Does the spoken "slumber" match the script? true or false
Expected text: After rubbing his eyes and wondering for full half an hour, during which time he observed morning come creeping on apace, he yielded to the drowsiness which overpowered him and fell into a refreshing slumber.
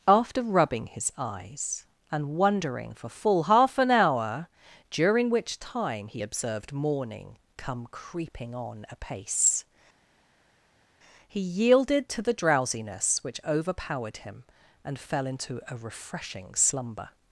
true